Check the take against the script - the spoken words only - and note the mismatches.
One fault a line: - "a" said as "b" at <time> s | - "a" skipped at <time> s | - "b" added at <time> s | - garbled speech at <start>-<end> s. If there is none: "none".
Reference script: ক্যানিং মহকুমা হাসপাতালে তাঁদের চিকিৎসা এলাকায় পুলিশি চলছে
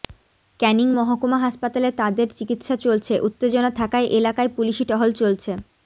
- "চলছে উত্তেজনা থাকায়" added at 2.8 s
- "টহল" added at 4.9 s